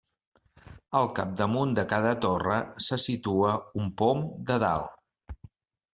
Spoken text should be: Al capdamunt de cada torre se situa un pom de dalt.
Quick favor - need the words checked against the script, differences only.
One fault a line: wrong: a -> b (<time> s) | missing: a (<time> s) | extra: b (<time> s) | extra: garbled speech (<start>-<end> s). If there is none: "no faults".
no faults